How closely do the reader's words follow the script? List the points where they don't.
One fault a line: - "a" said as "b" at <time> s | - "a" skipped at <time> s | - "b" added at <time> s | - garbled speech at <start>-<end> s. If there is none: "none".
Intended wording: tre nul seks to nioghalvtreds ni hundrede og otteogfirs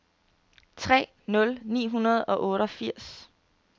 - "seks to nioghalvtreds" skipped at 1.6 s